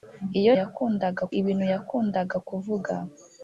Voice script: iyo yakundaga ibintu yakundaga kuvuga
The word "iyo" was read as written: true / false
true